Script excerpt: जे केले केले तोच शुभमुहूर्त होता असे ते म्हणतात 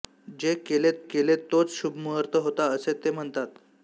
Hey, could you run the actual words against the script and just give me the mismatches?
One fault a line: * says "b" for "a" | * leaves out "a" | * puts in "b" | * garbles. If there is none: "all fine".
all fine